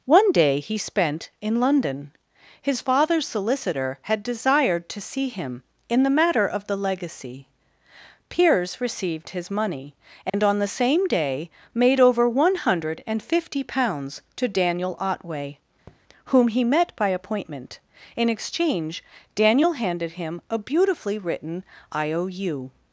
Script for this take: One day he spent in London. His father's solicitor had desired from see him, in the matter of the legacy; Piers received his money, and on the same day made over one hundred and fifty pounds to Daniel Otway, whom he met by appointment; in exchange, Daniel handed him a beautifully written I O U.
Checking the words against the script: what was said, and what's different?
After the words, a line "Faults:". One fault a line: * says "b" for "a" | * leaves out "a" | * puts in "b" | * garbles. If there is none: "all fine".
One day he spent in London. His father's solicitor had desired to see him, in the matter of the legacy; Piers received his money, and on the same day made over one hundred and fifty pounds to Daniel Otway, whom he met by appointment; in exchange, Daniel handed him a beautifully written I O U.
Faults:
* says "to" for "from"